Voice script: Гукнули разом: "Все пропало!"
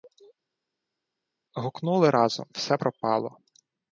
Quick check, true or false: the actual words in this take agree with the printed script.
true